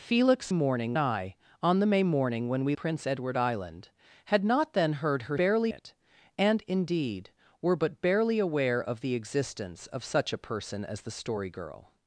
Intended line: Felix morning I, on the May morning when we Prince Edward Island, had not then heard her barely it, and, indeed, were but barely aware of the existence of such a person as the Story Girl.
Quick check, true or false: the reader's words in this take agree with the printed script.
true